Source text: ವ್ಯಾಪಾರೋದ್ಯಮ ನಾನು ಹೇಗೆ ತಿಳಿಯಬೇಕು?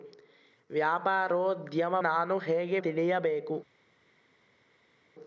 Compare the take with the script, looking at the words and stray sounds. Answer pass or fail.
pass